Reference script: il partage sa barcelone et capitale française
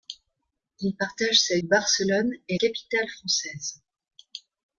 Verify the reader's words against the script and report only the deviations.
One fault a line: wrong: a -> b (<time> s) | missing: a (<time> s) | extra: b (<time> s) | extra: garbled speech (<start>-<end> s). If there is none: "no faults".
no faults